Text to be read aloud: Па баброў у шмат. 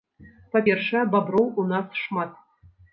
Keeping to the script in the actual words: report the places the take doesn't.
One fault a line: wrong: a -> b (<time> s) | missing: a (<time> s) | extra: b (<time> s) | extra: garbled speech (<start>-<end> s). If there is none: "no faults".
extra: першае (0.7 s)
extra: нас (1.7 s)